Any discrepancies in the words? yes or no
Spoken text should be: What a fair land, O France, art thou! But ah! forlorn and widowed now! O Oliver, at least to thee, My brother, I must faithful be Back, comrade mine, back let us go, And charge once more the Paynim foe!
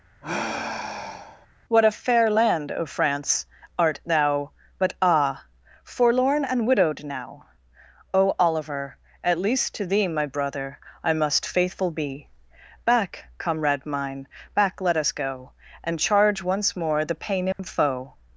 no